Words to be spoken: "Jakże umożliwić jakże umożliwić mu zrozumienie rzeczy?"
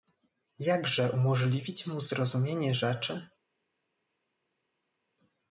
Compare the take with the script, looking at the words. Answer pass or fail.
fail